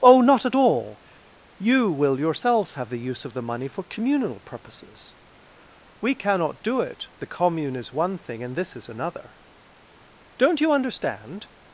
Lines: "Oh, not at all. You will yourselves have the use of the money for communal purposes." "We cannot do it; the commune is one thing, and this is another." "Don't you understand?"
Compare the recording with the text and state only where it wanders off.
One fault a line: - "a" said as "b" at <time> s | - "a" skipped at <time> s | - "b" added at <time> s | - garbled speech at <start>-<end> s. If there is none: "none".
none